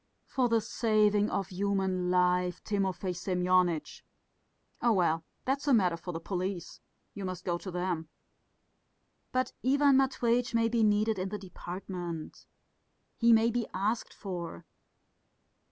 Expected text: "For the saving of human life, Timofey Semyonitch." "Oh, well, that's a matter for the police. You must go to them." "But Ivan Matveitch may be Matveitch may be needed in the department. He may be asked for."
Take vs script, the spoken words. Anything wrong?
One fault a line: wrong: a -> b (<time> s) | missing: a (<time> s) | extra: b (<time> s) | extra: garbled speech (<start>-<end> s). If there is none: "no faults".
missing: Matveitch may be (10.8 s)